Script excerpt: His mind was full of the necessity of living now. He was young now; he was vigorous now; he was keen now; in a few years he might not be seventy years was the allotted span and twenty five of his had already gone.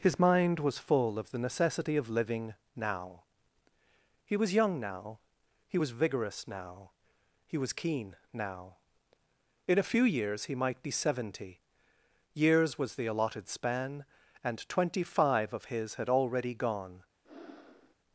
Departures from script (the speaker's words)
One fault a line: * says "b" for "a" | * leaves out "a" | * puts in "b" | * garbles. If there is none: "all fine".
* leaves out "not"